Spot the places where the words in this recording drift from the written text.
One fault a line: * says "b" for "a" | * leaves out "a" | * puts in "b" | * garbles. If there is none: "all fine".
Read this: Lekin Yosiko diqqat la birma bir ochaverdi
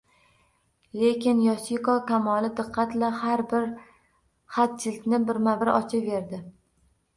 * puts in "kamoli"
* puts in "har bir xatjildni"